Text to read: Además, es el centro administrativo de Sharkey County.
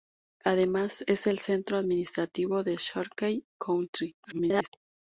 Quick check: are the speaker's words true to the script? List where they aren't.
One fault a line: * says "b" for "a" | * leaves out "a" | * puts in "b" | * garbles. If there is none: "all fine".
* garbles